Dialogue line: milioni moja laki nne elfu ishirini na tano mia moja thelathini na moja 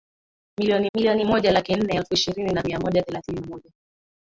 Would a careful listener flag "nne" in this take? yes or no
no